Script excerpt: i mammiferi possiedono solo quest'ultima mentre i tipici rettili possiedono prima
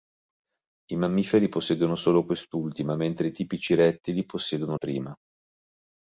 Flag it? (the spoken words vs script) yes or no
no